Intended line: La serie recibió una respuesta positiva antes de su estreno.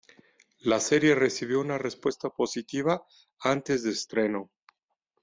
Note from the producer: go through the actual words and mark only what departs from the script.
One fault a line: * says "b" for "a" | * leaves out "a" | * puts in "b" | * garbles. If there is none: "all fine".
* leaves out "su"